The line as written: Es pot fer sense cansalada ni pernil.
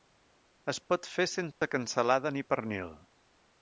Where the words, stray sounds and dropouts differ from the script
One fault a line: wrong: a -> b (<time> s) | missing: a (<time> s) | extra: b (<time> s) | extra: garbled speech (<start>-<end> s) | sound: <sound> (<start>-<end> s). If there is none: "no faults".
sound: dropout (1.5-1.6 s)